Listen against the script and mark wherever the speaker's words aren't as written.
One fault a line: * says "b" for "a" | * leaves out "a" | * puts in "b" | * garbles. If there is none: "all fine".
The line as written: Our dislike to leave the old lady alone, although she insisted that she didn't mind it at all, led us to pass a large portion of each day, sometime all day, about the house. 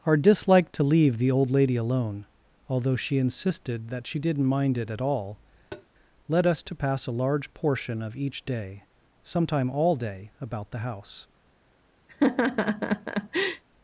all fine